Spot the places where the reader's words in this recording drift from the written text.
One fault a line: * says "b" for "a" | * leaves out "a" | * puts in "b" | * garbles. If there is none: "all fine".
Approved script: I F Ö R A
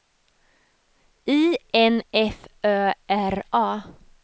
* puts in "N"